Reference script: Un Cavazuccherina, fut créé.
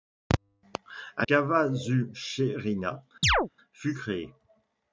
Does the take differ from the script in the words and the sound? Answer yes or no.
yes